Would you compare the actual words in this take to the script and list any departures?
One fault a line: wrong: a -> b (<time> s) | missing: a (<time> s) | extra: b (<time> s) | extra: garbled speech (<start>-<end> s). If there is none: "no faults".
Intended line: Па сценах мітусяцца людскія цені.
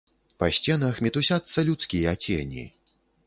no faults